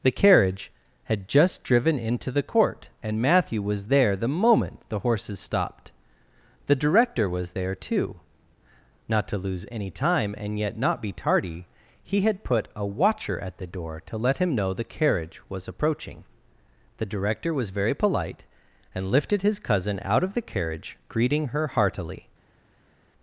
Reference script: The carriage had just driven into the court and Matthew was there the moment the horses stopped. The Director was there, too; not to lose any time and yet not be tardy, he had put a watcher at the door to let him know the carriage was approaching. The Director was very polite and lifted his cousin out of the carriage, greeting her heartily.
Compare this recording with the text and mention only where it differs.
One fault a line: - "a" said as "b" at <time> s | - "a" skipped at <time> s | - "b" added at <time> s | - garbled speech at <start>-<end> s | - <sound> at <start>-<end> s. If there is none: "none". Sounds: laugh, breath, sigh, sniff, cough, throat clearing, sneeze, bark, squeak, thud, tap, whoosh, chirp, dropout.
none